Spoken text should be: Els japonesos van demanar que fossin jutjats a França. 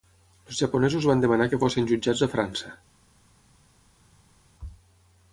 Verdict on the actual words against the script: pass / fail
pass